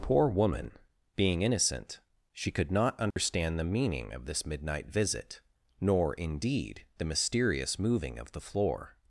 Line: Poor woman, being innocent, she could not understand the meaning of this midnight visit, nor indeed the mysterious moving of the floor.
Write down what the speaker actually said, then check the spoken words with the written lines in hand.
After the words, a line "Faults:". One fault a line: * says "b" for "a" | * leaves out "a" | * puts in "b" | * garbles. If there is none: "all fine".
Poor woman, being innocent, she could not understand the meaning of this midnight visit, nor indeed the mysterious moving of the floor.
Faults:
all fine